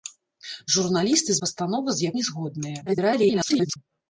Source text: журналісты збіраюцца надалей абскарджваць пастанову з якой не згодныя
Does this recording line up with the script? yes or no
no